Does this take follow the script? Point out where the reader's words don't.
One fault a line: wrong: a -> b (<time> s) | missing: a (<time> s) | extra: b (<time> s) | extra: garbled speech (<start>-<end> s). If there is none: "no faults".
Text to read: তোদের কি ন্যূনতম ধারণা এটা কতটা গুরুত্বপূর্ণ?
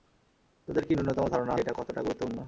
no faults